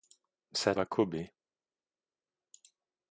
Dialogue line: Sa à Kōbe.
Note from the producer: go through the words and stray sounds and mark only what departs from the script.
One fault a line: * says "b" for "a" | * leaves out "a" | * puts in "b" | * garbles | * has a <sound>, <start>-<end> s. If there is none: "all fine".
all fine